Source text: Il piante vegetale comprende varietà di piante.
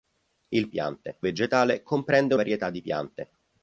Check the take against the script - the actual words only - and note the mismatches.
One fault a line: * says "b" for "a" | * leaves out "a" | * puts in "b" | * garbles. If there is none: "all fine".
all fine